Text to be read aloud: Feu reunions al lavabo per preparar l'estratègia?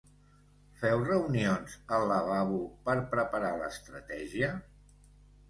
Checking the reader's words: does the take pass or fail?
pass